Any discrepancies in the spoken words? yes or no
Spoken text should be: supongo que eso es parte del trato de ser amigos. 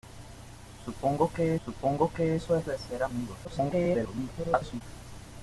yes